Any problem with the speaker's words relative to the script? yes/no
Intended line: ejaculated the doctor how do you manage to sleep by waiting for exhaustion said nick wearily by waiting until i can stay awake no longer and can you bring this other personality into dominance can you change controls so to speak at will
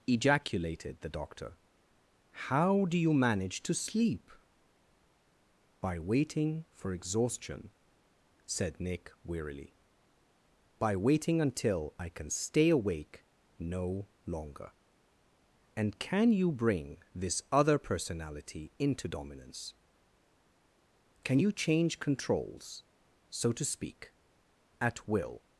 no